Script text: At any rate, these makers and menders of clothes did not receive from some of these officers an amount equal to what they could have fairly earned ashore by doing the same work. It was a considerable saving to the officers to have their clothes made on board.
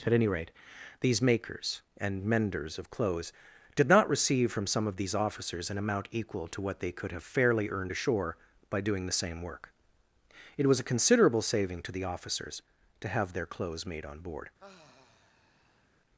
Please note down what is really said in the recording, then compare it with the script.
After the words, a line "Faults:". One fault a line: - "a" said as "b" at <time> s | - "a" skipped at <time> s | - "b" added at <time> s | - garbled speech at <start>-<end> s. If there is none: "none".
At any rate, these makers and menders of clothes did not receive from some of these officers an amount equal to what they could have fairly earned ashore by doing the same work. It was a considerable saving to the officers to have their clothes made on board.
Faults:
none